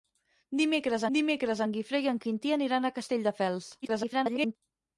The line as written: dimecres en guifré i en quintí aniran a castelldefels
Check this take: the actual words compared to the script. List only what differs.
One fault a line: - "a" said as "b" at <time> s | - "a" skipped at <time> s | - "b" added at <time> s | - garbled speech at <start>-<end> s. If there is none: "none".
- "dimecres" added at 1.2 s
- garbled speech at 3.8-4.6 s